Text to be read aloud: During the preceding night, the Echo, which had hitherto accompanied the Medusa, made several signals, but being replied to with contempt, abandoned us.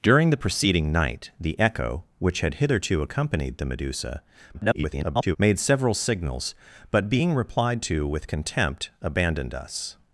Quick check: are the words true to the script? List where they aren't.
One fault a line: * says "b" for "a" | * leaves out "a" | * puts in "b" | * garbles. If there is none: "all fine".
* garbles